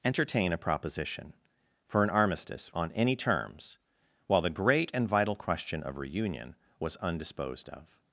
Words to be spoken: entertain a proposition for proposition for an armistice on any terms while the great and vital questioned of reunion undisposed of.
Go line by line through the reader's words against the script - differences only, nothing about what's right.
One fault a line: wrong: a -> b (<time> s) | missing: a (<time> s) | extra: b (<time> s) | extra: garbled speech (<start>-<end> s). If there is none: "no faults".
missing: proposition for (2.0 s)
wrong: questioned -> question (5.3 s)
extra: was (6.8 s)